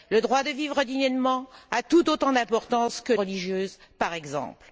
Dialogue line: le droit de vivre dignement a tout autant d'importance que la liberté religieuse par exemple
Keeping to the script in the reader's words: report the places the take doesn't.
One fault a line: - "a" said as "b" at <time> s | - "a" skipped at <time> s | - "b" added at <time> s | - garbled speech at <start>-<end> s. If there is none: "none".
- "la liberté" skipped at 3.1 s